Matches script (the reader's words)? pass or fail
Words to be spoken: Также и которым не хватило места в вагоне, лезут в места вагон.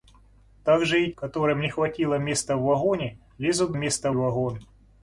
pass